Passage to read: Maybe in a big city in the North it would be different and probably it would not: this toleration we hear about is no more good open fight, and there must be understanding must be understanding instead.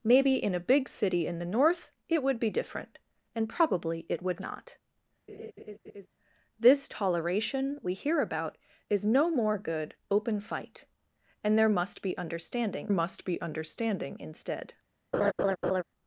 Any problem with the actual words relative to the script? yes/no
no